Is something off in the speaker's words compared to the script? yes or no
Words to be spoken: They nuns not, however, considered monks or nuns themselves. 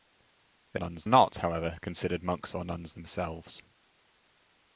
no